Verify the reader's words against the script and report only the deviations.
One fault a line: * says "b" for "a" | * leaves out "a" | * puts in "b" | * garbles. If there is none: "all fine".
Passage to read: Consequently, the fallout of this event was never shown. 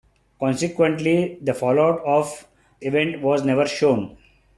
* leaves out "this"